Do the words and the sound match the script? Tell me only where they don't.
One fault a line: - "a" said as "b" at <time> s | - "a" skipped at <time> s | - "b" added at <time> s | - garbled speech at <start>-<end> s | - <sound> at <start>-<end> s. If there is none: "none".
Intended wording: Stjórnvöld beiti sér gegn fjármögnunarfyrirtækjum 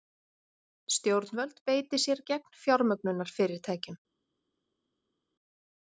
none